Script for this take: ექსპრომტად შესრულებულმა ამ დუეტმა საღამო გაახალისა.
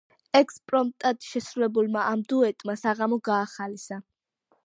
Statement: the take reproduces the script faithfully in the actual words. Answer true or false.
true